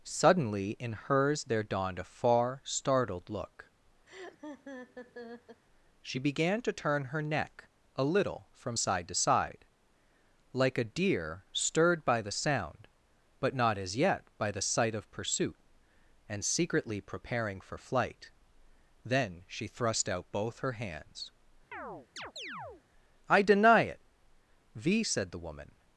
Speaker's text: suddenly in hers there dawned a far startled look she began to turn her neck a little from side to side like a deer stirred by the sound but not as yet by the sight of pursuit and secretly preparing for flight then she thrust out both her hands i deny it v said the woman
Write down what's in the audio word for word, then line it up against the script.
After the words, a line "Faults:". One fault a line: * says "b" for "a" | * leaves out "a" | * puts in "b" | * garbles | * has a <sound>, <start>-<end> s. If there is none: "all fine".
suddenly in hers there dawned a far startled look she began to turn her neck a little from side to side like a deer stirred by the sound but not as yet by the sight of pursuit and secretly preparing for flight then she thrust out both her hands i deny it v said the woman
Faults:
* has a laugh, 4.1-5.6 s
* has a chirp, 21.7-22.8 s